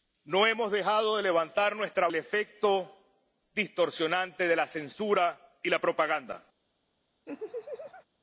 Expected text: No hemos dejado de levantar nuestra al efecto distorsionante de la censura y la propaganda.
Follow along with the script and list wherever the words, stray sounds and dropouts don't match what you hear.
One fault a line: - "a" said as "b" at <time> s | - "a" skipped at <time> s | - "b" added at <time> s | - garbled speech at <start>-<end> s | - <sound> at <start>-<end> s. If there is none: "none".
- laugh at 7.3-8.1 s